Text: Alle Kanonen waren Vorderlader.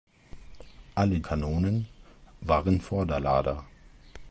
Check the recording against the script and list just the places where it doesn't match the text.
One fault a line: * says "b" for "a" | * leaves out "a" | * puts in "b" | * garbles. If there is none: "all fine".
all fine